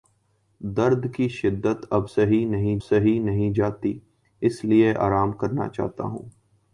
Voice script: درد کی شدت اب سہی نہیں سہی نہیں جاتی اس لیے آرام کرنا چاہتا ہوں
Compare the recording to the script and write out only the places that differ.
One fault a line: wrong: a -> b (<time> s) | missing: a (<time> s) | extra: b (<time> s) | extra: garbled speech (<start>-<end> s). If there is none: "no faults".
no faults